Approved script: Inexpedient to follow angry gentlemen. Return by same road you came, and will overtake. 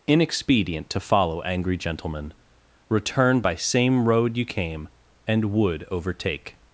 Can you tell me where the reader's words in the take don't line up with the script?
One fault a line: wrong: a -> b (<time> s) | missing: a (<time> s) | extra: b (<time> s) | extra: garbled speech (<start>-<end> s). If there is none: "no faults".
wrong: will -> would (5.5 s)